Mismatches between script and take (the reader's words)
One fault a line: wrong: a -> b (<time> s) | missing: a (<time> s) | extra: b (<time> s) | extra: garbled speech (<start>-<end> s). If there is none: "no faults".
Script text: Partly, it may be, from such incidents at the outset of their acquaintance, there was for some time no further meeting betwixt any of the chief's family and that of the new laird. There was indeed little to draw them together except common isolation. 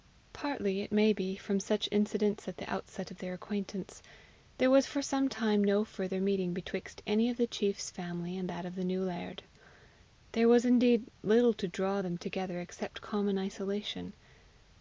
no faults